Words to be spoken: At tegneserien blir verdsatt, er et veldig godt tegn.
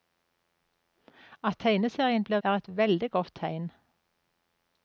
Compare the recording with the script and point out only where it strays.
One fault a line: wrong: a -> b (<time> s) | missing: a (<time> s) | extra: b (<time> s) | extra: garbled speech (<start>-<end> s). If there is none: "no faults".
missing: verdsatt (2.4 s)